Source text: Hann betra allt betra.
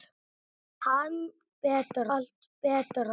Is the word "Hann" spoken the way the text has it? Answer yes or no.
yes